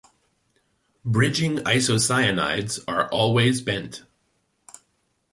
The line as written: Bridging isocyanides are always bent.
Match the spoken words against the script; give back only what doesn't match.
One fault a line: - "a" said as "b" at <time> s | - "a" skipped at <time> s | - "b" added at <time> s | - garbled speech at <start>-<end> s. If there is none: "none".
none